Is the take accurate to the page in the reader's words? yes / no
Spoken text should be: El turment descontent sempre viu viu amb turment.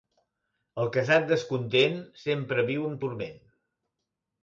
no